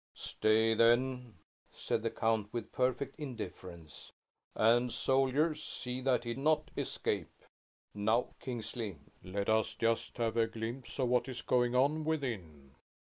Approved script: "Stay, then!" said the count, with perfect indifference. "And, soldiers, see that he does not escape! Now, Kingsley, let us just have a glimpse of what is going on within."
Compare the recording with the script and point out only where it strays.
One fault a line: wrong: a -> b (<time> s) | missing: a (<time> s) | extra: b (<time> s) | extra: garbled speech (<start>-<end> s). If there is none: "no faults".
missing: does (6.3 s)